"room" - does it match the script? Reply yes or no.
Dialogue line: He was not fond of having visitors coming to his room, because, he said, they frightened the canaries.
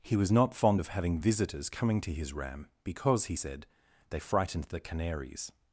no